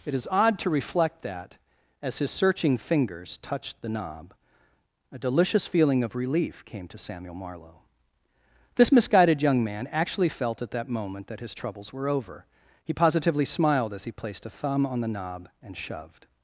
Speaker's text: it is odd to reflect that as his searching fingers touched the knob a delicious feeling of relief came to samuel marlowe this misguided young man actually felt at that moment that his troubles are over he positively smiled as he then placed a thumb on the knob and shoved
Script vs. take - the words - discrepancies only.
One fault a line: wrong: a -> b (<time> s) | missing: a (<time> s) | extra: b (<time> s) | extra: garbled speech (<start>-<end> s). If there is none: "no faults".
wrong: are -> were (11.9 s)
missing: then (14.1 s)